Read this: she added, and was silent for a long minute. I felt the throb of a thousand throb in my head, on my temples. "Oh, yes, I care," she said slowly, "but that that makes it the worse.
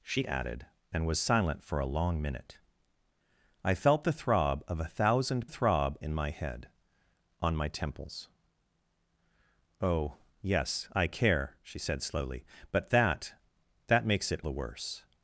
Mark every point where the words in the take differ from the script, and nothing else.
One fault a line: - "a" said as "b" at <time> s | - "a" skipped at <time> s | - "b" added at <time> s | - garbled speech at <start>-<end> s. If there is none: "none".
none